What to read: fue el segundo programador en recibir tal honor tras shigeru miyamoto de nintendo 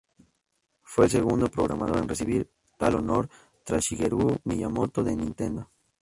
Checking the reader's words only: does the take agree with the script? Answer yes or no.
yes